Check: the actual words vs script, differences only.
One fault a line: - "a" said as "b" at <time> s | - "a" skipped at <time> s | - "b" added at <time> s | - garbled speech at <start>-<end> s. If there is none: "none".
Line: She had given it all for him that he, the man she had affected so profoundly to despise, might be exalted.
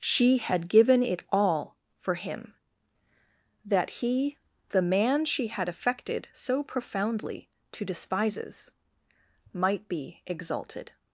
- "despise" said as "despises" at 7.8 s